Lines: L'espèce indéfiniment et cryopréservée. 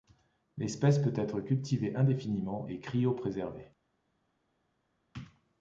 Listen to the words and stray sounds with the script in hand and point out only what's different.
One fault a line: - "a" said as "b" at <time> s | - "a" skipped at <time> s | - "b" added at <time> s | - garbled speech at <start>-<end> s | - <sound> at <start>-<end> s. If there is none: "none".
- "peut être cultivée" added at 1.0 s